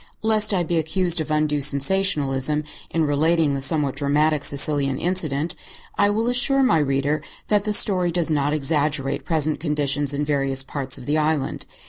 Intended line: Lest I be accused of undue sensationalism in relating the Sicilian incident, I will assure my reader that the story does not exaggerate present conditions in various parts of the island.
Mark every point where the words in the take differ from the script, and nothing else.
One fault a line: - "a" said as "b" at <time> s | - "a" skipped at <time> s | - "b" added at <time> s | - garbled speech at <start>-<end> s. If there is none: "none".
- "somewhat dramatic" added at 3.6 s